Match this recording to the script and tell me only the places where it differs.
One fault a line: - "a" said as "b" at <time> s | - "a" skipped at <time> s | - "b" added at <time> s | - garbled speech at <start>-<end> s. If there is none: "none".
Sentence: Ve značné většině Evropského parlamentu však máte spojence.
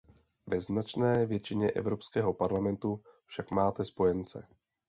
none